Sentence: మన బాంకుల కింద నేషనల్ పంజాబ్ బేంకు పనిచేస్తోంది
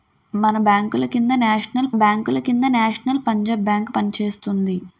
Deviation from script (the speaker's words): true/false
true